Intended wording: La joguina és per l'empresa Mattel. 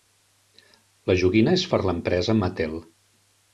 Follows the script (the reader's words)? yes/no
yes